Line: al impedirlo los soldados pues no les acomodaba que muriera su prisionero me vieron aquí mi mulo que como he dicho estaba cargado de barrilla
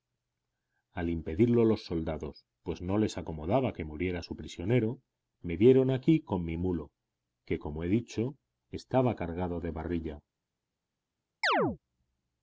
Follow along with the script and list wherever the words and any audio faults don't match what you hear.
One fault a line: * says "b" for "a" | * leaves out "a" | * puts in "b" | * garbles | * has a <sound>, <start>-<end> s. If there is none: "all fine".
* puts in "con"
* has a chirp, 11.4-11.8 s